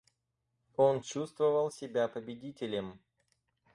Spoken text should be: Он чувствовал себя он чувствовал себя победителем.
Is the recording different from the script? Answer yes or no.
yes